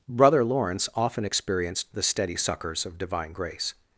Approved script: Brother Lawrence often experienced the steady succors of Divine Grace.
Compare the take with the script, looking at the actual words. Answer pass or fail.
pass